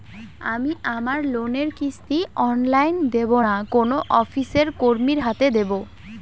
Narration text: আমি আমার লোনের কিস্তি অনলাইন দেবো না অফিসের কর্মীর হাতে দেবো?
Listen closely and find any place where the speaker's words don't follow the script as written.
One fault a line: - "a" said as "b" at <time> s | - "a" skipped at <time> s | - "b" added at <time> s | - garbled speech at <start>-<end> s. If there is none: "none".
- "কোনো" added at 3.7 s